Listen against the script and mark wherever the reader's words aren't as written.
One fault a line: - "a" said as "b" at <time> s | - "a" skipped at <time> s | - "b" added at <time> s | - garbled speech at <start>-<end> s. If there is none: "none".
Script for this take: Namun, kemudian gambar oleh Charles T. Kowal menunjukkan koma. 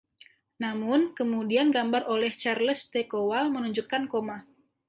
none